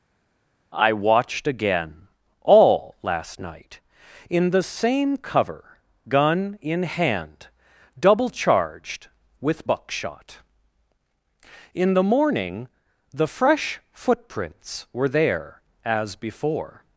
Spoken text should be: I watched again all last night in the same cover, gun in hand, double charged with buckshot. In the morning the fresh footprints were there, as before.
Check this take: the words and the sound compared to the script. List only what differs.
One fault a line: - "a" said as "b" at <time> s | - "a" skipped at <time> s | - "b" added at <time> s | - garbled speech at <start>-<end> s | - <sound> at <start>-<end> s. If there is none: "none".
none